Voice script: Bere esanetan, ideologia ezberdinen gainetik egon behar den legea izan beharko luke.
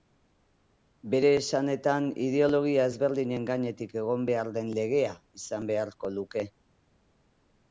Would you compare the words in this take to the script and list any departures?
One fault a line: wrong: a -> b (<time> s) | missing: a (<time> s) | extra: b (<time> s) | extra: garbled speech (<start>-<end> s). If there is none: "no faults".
no faults